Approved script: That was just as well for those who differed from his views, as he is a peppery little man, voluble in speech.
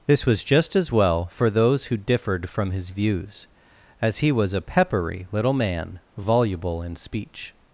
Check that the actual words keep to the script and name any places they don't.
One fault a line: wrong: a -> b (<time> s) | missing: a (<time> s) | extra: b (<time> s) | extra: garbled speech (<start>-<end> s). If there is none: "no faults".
wrong: That -> This (0.1 s)
wrong: is -> was (4.3 s)